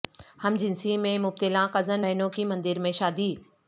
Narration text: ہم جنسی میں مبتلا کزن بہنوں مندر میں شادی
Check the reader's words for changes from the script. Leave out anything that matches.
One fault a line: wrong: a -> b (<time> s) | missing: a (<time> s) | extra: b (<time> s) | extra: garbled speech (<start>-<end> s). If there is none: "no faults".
extra: کی (2.3 s)